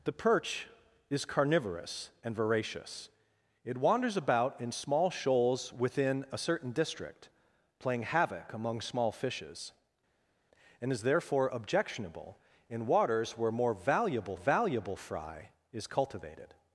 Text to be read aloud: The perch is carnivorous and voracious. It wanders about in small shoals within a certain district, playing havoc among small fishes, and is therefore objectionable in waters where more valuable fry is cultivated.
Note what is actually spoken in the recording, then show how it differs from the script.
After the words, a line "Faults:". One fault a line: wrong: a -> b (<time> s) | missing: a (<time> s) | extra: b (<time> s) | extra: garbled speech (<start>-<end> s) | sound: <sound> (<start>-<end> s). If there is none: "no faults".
The perch is carnivorous and voracious. It wanders about in small shoals within a certain district, playing havoc among small fishes, and is therefore objectionable in waters where more valuable valuable fry is cultivated.
Faults:
extra: valuable (14.3 s)